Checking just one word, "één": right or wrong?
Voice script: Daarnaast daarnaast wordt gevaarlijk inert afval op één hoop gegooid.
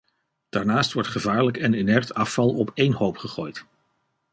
right